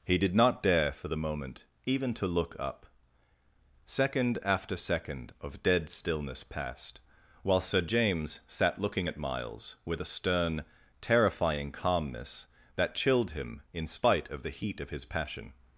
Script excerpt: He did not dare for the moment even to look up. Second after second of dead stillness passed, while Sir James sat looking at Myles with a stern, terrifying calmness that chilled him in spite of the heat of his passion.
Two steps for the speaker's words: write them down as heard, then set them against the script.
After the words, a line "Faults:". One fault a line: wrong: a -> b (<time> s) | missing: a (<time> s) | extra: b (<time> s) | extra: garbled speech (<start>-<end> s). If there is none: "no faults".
He did not dare for the moment even to look up. Second after second of dead stillness passed, while Sir James sat looking at Myles with a stern, terrifying calmness that chilled him in spite of the heat of his passion.
Faults:
no faults